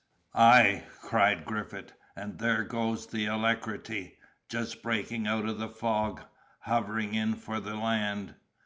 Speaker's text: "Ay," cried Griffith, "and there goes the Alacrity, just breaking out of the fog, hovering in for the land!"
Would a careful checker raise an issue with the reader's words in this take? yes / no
no